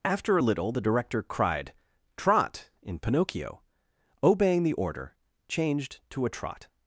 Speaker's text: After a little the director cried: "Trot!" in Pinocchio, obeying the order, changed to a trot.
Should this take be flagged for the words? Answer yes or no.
no